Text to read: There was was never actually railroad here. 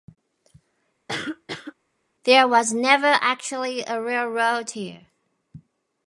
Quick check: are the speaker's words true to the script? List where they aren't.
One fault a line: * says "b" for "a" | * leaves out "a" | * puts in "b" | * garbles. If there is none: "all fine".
* leaves out "was"
* puts in "a"